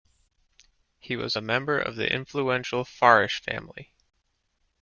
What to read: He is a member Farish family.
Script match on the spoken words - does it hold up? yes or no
no